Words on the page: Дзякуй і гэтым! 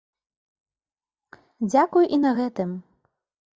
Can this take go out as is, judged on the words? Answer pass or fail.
fail